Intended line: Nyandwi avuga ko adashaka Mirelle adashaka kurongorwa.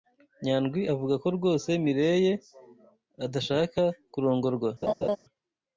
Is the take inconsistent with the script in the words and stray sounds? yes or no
yes